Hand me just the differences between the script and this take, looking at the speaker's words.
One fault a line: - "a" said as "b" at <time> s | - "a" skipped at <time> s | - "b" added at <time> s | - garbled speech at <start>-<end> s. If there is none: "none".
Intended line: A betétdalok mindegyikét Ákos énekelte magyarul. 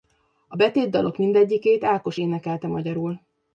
none